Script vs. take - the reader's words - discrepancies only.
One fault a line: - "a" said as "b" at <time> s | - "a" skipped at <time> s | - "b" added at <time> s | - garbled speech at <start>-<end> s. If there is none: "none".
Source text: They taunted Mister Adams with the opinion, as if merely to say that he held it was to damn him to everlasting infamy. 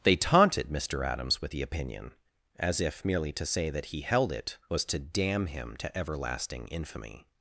none